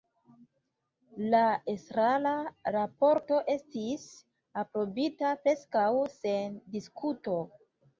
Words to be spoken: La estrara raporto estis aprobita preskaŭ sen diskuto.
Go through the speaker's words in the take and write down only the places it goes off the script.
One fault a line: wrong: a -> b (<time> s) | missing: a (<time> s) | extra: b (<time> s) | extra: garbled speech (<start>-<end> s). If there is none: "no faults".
no faults